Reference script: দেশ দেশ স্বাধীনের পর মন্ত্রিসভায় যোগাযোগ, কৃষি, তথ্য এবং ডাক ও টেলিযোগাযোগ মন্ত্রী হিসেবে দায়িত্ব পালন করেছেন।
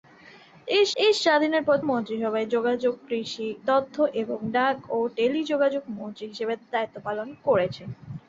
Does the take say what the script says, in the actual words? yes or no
yes